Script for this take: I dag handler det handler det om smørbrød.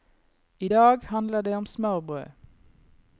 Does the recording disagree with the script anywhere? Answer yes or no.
yes